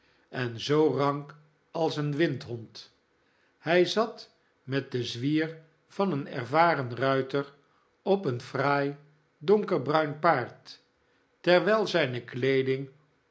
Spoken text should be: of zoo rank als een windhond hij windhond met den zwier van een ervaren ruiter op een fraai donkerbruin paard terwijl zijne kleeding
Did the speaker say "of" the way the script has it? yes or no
no